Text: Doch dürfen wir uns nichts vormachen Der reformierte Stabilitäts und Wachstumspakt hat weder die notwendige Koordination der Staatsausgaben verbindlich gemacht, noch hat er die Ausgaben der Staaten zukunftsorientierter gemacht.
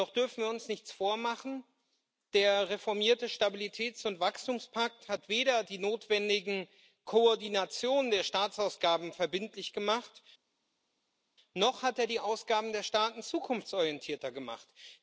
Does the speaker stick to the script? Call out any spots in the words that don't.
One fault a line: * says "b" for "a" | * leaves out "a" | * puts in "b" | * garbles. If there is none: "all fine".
all fine